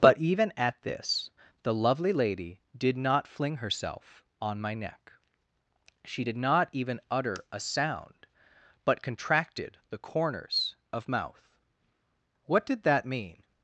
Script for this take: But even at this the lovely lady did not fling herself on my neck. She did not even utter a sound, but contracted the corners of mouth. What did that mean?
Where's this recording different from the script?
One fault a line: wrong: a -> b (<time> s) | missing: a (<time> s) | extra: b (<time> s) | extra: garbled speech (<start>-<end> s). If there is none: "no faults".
no faults